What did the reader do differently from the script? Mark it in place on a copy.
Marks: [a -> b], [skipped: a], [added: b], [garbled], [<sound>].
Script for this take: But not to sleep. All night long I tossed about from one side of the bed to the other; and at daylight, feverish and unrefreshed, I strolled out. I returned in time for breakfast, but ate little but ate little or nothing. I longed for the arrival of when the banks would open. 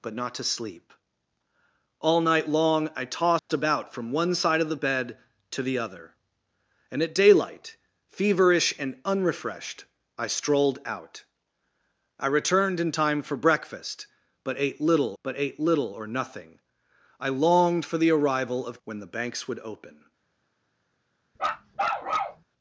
But not to sleep. All night long I tossed [dropout] about from one side of the bed to the other; and at daylight, feverish and unrefreshed, I strolled out. I returned in time for breakfast, but ate little but ate little or nothing. I longed for the arrival of when the banks would open. [bark]